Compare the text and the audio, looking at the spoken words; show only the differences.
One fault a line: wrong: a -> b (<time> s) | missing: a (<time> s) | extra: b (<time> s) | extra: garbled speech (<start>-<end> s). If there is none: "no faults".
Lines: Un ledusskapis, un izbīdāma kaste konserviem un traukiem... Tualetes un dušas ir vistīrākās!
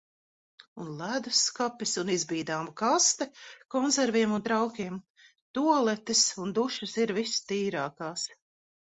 no faults